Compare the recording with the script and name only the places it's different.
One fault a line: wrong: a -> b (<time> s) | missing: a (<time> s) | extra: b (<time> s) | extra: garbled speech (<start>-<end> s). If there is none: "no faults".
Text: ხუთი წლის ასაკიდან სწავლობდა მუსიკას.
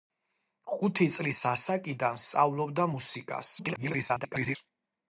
extra: garbled speech (3.6-4.6 s)